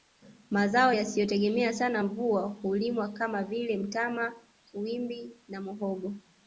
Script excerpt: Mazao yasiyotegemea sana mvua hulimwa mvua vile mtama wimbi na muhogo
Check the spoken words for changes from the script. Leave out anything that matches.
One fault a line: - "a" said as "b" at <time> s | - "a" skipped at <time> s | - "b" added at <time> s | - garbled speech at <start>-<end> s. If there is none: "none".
- "mvua" said as "kama" at 3.1 s